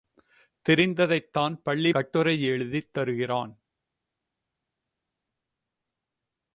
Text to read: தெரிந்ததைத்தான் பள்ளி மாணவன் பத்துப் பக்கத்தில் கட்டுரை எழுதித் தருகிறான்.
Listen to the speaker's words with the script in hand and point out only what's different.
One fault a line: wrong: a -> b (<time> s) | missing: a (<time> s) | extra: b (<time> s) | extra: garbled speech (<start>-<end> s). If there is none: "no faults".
missing: மாணவன் பத்துப் பக்கத்தில் (1.9 s)